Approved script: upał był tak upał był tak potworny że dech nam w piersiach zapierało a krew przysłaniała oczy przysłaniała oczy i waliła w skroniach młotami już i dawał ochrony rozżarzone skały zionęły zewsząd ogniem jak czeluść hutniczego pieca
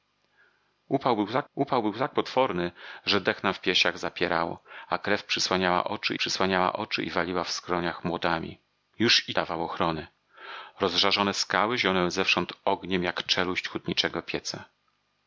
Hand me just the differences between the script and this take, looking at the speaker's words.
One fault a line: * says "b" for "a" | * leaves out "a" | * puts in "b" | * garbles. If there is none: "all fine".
all fine